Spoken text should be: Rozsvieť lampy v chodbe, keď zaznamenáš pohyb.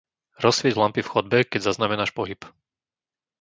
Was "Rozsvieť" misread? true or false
false